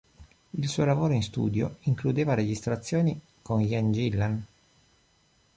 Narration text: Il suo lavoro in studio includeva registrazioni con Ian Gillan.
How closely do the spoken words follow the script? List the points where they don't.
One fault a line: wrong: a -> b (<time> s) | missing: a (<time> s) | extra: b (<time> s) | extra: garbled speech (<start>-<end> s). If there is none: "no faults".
no faults